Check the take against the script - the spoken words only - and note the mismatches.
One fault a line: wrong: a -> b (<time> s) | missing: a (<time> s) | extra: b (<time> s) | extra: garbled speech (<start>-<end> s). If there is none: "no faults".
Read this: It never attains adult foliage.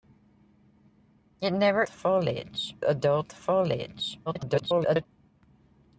wrong: attains -> foliage (1.9 s)
extra: garbled speech (4.3-5.1 s)